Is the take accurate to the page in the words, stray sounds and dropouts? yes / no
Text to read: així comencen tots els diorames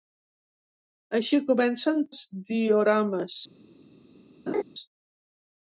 no